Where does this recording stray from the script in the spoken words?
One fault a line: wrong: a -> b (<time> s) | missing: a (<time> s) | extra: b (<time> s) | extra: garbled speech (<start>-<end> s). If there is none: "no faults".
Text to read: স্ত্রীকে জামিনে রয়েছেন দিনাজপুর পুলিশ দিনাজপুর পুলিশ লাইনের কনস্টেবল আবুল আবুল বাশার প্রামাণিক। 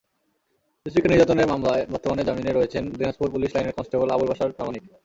extra: নির্যাতনের মামলায় বর্তমানে (1.1 s)
missing: দিনাজপুর পুলিশ (3.5 s)
missing: আবুল (4.3 s)